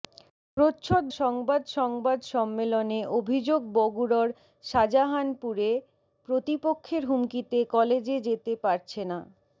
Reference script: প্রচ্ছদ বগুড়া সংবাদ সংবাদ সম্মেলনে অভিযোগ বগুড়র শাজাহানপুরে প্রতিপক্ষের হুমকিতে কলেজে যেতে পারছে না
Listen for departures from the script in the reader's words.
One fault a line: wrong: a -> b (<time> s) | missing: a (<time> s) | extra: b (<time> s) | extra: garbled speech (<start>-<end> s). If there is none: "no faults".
missing: বগুড়া (1.0 s)